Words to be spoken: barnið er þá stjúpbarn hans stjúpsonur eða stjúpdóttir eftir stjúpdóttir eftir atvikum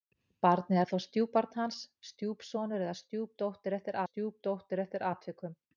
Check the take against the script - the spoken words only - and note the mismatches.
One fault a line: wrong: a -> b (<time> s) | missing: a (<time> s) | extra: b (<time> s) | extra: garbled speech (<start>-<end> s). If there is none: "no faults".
no faults